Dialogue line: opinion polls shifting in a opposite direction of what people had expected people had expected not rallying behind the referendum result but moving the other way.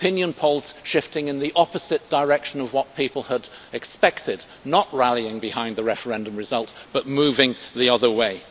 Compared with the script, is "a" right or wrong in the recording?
wrong